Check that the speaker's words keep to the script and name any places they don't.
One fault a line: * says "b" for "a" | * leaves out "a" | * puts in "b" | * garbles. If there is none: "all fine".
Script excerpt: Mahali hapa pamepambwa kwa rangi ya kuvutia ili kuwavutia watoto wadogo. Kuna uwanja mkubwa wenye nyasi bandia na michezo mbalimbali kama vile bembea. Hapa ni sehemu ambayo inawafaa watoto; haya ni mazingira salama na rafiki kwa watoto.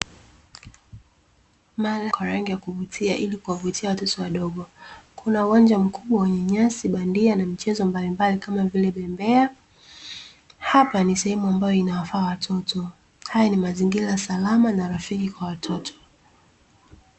* leaves out "hapa pamepambwa"